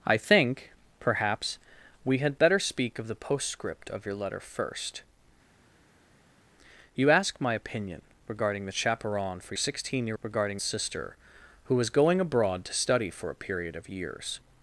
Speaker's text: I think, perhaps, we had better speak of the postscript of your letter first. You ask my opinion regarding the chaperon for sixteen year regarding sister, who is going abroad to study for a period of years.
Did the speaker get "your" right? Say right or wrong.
right